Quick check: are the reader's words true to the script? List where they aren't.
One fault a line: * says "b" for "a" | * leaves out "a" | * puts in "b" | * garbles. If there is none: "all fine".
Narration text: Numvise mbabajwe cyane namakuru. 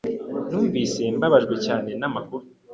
all fine